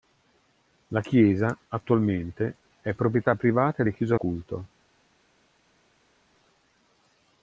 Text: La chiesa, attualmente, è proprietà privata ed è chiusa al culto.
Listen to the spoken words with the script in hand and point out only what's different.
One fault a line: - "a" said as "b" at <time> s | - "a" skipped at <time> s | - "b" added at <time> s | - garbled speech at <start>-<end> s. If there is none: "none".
- "al" skipped at 4.1 s